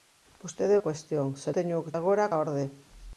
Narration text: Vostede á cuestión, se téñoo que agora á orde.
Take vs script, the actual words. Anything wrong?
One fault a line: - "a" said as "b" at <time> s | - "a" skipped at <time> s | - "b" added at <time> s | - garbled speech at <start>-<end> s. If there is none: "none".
none